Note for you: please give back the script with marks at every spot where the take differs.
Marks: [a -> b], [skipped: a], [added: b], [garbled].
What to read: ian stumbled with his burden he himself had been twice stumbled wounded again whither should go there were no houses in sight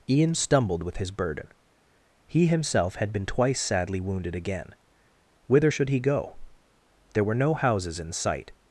ian stumbled with his burden he himself had been twice [stumbled -> sadly] wounded again whither should [added: he] go there were no houses in sight